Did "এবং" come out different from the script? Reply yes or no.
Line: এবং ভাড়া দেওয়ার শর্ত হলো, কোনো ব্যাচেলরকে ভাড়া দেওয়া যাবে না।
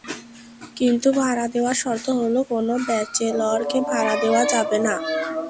yes